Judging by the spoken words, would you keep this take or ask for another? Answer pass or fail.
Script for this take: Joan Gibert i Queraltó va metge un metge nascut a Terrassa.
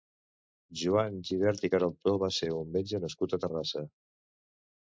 fail